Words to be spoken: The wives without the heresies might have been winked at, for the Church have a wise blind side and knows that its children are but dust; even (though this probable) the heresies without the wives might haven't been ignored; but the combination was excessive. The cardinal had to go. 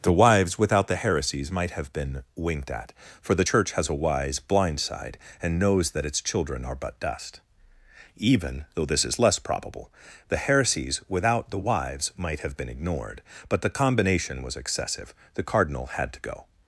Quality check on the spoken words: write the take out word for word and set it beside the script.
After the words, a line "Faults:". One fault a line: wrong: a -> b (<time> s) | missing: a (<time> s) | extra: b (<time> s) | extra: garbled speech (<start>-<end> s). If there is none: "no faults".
The wives without the heresies might have been winked at, for the Church has a wise blind side and knows that its children are but dust; even (though this is less probable) the heresies without the wives might have been ignored; but the combination was excessive. The cardinal had to go.
Faults:
wrong: have -> has (3.7 s)
extra: is less (9.0 s)
wrong: haven't -> have (12.4 s)